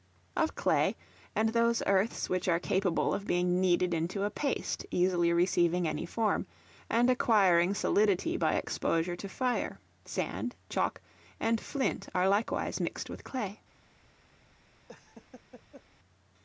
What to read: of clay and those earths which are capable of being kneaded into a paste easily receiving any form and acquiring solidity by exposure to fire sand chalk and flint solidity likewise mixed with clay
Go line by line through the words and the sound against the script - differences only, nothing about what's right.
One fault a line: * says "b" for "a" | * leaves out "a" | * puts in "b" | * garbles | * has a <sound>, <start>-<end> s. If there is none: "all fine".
* says "are" for "solidity"
* has a laugh, 14.9-15.8 s